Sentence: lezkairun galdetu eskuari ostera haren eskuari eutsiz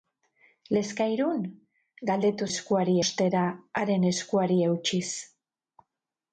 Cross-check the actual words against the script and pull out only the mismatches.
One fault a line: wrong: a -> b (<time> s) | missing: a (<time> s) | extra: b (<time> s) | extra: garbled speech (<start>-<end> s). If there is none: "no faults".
no faults